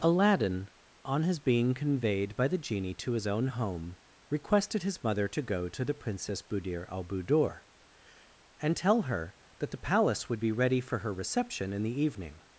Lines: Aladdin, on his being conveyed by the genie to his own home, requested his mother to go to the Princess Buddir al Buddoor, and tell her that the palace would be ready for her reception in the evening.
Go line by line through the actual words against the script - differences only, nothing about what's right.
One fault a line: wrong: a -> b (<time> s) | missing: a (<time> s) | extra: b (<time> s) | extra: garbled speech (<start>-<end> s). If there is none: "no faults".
no faults